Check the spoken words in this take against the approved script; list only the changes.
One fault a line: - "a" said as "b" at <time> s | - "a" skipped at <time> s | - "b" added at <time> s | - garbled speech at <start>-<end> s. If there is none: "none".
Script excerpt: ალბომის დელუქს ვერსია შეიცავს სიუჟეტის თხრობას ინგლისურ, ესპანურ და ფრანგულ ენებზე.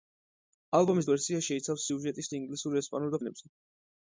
- "დელუქს" skipped at 1.1 s
- "თხრობას" skipped at 2.3 s
- "ფრანგულ" skipped at 3.2 s